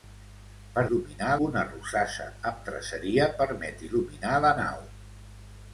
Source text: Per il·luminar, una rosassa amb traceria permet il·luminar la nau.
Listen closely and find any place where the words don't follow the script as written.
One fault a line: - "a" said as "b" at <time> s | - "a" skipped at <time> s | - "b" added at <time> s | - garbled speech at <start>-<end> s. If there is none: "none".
none